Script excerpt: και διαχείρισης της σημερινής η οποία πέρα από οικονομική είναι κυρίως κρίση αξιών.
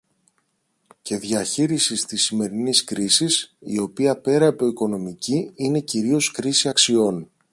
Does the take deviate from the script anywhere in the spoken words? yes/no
yes